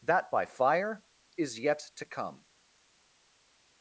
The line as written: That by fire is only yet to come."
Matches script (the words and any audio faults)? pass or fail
fail